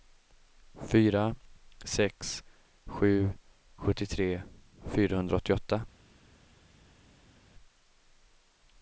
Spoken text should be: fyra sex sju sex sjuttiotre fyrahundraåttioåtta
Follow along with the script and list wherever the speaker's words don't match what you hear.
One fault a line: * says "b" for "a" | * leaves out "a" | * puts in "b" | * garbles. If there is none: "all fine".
* leaves out "sex"